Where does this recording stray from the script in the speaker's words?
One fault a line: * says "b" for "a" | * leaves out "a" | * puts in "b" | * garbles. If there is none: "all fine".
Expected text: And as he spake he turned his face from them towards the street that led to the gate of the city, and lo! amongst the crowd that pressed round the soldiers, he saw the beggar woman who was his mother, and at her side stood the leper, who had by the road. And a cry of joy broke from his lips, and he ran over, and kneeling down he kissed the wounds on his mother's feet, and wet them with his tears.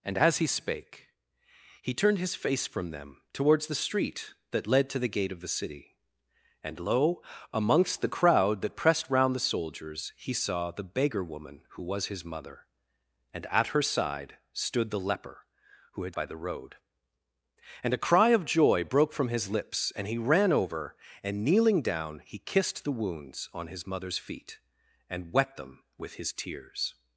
all fine